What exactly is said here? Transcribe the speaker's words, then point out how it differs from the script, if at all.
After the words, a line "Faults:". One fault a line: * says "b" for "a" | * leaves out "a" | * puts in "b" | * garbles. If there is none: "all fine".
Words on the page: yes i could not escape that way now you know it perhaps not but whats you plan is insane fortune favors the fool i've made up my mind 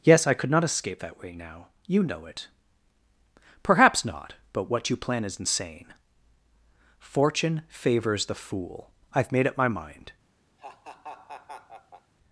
yes i could not escape that way now you know it perhaps not but what you plan is insane fortune favors the fool i've made up my mind
Faults:
* says "what" for "whats"